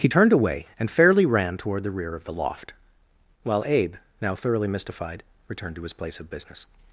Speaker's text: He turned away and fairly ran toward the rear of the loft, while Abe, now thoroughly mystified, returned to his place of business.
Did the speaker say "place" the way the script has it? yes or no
yes